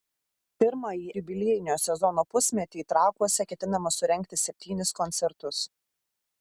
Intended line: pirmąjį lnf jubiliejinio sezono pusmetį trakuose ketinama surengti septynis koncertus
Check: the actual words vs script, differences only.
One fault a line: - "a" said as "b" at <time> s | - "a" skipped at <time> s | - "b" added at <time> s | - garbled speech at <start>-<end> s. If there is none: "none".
- "lnf" skipped at 1.1 s